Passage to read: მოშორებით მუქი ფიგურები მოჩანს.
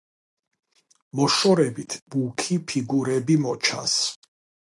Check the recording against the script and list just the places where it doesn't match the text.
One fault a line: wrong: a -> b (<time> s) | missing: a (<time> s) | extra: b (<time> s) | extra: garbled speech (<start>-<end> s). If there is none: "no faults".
no faults